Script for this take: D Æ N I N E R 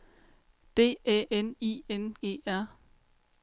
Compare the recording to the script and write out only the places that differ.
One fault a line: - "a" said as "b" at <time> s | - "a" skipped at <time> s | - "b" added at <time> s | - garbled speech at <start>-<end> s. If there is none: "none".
none